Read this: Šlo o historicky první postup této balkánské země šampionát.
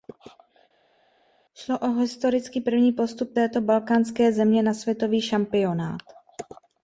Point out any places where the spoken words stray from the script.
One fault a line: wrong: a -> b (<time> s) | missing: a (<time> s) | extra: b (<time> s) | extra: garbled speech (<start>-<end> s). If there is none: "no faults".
extra: na světový (4.6 s)